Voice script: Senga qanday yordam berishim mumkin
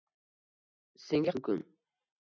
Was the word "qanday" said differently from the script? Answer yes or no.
yes